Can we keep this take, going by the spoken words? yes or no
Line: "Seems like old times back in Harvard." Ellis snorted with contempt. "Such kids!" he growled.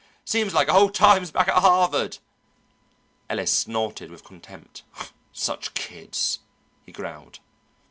no